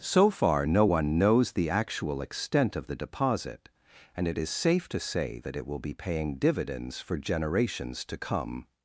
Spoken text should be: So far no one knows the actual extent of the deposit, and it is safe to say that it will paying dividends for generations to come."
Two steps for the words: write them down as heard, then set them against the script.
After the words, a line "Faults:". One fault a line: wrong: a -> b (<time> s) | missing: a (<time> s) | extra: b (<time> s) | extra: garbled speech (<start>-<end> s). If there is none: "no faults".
So far no one knows the actual extent of the deposit, and it is safe to say that it will be paying dividends for generations to come."
Faults:
extra: be (5.8 s)